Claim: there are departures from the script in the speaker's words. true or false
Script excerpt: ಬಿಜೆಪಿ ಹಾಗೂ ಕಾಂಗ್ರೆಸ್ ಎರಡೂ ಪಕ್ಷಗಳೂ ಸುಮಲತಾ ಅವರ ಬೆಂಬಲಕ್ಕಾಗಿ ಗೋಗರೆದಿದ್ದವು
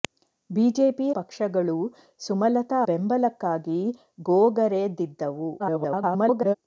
true